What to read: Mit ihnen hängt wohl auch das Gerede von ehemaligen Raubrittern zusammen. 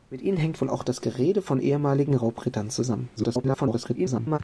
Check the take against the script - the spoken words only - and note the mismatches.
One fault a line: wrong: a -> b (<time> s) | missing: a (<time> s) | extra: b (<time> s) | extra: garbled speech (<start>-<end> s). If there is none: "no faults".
extra: garbled speech (3.2-4.4 s)